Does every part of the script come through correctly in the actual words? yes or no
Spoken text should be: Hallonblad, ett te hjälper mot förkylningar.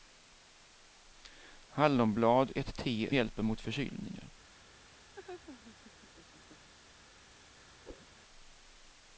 yes